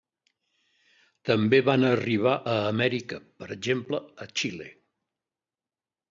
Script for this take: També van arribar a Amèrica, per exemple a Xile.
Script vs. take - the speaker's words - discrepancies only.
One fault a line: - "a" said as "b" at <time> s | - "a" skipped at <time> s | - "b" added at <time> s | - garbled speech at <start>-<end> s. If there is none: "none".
none